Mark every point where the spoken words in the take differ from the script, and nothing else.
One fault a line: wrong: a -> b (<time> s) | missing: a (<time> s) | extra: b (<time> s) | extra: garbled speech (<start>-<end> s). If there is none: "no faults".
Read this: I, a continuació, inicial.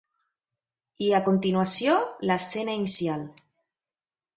extra: l'escena (2.3 s)